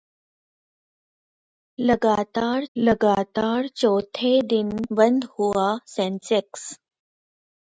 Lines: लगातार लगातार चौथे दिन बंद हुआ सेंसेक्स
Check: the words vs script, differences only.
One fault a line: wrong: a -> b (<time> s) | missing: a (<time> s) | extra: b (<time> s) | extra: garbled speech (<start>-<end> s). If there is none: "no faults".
no faults